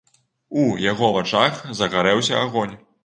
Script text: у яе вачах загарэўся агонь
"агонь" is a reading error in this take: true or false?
false